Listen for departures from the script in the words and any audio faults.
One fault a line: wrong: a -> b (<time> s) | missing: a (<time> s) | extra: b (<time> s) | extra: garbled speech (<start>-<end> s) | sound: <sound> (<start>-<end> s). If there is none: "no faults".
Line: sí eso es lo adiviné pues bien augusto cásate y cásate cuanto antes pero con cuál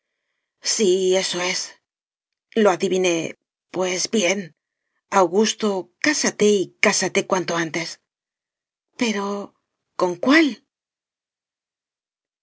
no faults